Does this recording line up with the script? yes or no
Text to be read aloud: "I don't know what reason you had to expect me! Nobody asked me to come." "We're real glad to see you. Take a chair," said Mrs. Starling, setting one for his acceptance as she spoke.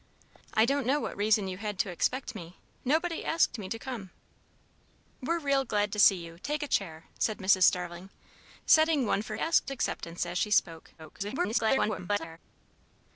no